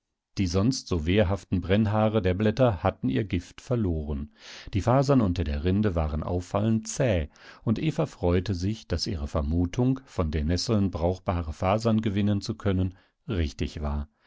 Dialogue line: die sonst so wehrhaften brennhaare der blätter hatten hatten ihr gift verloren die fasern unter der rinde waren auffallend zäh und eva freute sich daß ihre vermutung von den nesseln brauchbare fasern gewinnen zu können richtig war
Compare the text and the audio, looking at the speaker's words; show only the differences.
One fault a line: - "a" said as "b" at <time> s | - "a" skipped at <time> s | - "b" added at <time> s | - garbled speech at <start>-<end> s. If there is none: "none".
- "hatten" skipped at 3.1 s